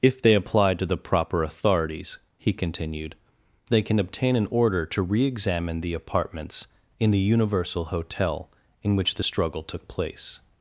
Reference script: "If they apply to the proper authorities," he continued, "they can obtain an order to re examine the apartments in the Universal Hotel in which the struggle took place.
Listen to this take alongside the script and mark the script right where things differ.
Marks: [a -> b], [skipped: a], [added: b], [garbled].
"If they apply to the proper authorities," he continued, "they can obtain an order to re examine the apartments in the Universal Hotel in which the struggle took place.